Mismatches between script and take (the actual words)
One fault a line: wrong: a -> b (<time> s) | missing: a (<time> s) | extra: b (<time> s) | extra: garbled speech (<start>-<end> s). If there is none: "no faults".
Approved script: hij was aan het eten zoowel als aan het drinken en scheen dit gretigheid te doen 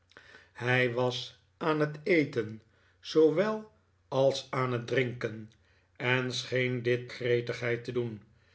no faults